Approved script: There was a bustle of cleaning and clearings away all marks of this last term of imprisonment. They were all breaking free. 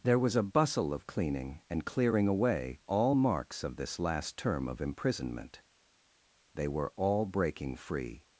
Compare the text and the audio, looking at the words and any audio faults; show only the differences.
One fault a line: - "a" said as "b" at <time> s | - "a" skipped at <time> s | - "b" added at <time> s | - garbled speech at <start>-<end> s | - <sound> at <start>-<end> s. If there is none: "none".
- "clearings" said as "clearing" at 1.8 s